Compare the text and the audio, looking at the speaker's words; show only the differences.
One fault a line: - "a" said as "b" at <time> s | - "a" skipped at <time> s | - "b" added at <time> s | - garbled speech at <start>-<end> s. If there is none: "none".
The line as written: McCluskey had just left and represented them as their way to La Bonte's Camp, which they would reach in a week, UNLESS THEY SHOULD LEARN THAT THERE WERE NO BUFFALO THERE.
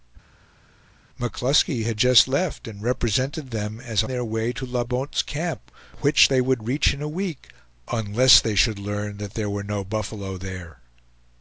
none